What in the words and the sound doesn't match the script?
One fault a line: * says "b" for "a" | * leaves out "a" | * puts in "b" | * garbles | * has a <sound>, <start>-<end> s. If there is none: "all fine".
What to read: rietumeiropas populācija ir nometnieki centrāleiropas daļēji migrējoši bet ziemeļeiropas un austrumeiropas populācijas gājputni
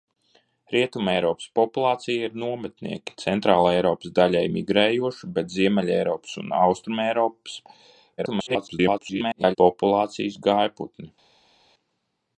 * garbles